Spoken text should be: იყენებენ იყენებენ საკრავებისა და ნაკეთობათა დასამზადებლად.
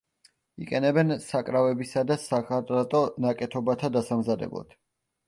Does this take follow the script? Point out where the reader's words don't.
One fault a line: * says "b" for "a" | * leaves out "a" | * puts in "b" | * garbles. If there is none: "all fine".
* leaves out "იყენებენ"
* puts in "სახარატო"